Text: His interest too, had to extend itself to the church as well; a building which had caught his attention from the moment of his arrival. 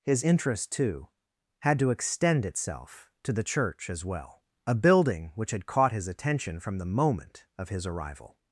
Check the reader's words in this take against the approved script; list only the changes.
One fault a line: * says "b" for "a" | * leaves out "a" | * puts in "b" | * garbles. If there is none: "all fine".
all fine